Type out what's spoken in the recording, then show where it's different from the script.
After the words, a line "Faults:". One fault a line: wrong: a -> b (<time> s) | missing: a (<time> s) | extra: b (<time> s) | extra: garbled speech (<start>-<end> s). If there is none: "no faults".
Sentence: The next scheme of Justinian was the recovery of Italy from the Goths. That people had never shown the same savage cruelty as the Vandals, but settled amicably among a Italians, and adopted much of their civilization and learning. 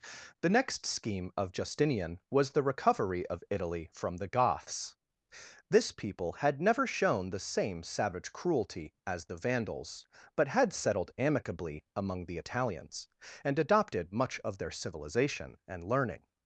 The next scheme of Justinian was the recovery of Italy from the Goths. This people had never shown the same savage cruelty as the Vandals, but had settled amicably among the Italians, and adopted much of their civilization and learning.
Faults:
wrong: That -> This (5.7 s)
extra: had (10.5 s)
wrong: a -> the (12.2 s)